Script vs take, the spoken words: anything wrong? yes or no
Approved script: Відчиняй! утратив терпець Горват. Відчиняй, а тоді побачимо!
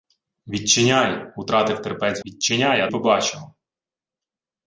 yes